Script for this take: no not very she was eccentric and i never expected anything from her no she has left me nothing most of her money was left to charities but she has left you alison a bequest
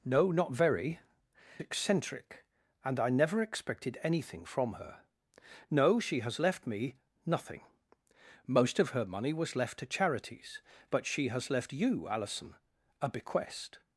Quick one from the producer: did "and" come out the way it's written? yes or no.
yes